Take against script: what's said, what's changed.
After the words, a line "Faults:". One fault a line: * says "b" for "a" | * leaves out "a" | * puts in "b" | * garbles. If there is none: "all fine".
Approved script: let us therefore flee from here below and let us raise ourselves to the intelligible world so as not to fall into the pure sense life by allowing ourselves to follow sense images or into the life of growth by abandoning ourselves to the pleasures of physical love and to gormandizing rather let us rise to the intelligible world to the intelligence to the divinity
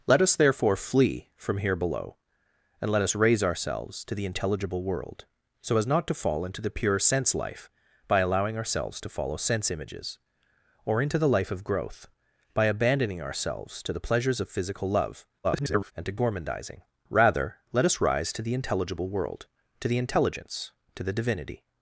let us therefore flee from here below and let us raise ourselves to the intelligible world so as not to fall into the pure sense life by allowing ourselves to follow sense images or into the life of growth by abandoning ourselves to the pleasures of physical love [garbled] and to gormandizing rather let us rise to the intelligible world to the intelligence to the divinity
Faults:
* garbles